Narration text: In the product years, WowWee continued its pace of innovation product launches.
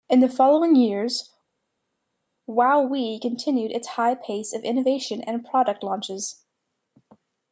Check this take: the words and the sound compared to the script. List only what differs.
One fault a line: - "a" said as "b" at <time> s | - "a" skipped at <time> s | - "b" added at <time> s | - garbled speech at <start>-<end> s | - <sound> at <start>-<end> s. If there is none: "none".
- "product" said as "following" at 0.3 s
- "high" added at 3.9 s
- "and" added at 5.2 s